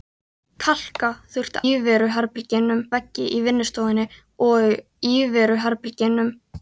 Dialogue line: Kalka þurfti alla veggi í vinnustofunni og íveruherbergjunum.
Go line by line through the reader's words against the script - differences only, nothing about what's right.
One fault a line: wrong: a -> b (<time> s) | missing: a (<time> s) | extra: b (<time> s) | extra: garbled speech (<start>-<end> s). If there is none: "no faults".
wrong: alla -> íveruherbergjunum (1.7 s)